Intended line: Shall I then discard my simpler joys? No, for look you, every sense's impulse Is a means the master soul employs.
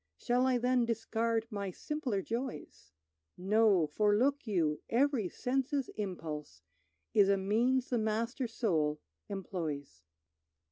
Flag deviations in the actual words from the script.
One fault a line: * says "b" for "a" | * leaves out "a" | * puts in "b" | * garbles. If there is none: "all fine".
all fine